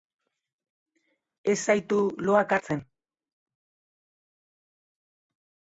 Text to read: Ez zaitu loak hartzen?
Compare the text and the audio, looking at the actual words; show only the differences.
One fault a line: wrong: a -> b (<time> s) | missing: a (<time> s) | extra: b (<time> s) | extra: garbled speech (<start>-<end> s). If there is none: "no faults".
no faults